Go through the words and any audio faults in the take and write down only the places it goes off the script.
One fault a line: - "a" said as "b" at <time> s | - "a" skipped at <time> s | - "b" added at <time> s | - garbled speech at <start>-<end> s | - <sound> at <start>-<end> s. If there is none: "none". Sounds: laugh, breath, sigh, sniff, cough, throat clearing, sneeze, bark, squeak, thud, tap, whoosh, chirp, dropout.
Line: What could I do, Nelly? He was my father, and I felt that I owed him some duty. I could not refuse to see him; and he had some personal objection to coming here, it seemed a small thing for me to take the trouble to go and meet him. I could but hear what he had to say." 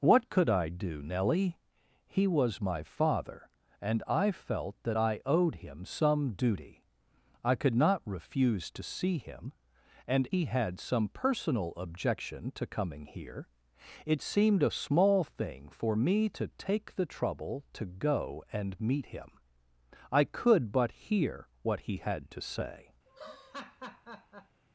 - laugh at 23.1-24.6 s